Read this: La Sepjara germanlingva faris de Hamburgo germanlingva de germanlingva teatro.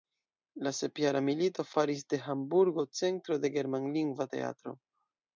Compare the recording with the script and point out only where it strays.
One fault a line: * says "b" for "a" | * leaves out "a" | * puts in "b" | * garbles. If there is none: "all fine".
* says "milito" for "germanlingva"
* says "centro" for "germanlingva"